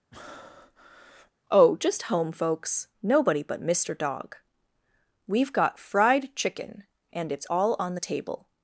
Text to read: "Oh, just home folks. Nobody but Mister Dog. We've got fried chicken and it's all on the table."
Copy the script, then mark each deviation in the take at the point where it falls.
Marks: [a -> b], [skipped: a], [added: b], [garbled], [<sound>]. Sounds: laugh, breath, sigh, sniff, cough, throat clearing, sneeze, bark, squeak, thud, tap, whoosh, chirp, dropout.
[breath] "Oh, just home folks. Nobody but Mister Dog. We've got fried chicken and it's all on the table."